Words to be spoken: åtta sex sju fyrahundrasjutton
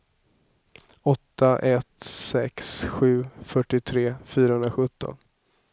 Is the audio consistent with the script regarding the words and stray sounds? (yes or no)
no